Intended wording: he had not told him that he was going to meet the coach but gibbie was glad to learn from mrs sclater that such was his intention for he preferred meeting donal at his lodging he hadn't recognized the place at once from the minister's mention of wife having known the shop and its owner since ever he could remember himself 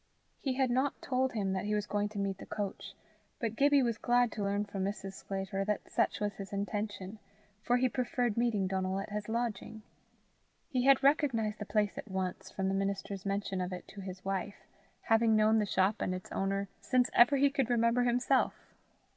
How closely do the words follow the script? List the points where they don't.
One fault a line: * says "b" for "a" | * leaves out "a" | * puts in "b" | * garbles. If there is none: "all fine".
* says "had" for "hadn't"
* puts in "it to his"